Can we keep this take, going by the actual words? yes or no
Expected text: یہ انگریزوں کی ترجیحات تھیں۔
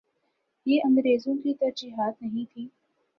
no